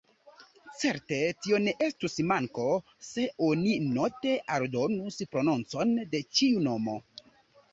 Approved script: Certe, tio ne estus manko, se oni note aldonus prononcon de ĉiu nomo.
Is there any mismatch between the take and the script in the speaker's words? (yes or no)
no